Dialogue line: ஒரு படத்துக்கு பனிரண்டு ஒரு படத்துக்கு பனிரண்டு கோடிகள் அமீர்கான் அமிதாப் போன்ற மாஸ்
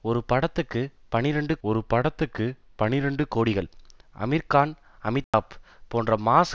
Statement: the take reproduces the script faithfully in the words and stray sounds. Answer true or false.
false